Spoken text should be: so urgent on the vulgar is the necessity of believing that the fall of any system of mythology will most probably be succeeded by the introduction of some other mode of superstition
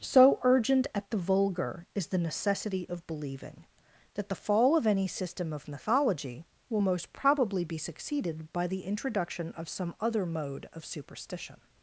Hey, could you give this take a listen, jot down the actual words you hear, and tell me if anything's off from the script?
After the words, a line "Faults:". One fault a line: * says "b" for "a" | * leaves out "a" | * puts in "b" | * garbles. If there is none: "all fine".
so urgent at the vulgar is the necessity of believing that the fall of any system of mythology will most probably be succeeded by the introduction of some other mode of superstition
Faults:
* says "at" for "on"